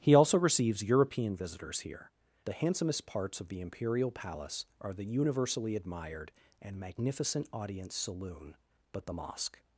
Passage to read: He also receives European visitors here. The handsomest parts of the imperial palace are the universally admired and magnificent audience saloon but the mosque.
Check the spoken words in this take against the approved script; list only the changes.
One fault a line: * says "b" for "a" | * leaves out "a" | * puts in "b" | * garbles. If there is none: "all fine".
all fine